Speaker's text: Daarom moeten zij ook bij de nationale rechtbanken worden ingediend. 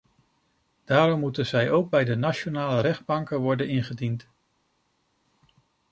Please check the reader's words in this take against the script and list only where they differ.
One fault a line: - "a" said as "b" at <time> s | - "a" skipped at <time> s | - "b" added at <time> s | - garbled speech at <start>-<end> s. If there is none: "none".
none